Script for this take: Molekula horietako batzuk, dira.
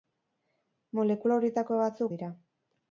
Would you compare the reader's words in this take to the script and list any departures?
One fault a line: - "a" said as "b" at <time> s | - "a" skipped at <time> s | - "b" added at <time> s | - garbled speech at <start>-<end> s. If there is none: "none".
none